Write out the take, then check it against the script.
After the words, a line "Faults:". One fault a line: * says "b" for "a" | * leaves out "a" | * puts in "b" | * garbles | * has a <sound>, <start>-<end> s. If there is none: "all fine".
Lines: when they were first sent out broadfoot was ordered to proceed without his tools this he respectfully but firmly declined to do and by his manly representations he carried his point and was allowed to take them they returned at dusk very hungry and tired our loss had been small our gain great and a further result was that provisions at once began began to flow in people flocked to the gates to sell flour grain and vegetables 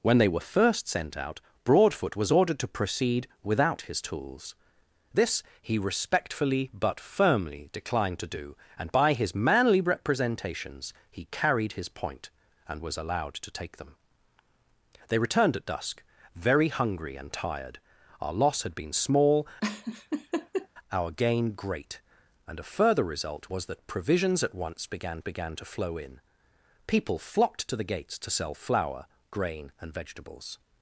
when they were first sent out broadfoot was ordered to proceed without his tools this he respectfully but firmly declined to do and by his manly representations he carried his point and was allowed to take them they returned at dusk very hungry and tired our loss had been small our gain great and a further result was that provisions at once began began to flow in people flocked to the gates to sell flour grain and vegetables
Faults:
* has a laugh, 19.6-20.7 s